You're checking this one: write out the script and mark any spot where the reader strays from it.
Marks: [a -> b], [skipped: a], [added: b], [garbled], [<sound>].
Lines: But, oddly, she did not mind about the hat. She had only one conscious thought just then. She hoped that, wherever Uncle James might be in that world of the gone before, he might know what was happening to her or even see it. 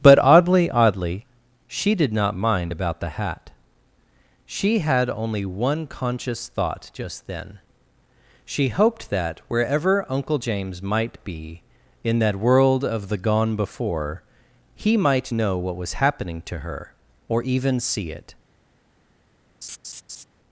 But, oddly, [added: oddly] she did not mind about the hat. She had only one conscious thought just then. She hoped that, wherever Uncle James might be in that world of the gone before, he might know what was happening to her or even see it. [laugh]